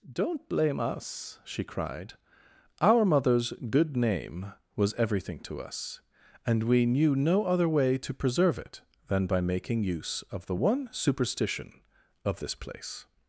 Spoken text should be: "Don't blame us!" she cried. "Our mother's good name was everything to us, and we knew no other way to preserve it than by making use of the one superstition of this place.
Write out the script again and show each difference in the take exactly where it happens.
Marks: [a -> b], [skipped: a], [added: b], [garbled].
"Don't blame us!" she cried. "Our mother's good name was everything to us, and we knew no other way to preserve it than by making use of the one superstition of this place.